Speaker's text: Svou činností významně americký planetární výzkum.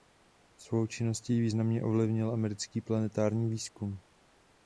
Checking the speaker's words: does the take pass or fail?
fail